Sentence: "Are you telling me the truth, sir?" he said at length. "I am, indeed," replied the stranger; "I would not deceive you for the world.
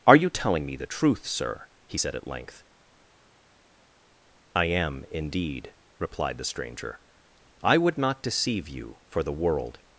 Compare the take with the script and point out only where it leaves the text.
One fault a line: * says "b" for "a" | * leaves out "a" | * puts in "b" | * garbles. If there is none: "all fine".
all fine